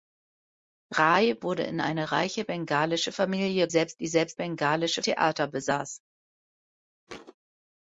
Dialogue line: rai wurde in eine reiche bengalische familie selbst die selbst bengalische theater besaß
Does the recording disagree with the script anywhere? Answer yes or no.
no